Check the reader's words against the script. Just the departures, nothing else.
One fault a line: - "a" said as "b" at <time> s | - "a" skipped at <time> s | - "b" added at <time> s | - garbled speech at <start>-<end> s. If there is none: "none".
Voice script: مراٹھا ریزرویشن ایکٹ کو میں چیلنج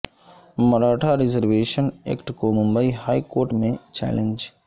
- "ممبئی ہائی کورٹ" added at 2.5 s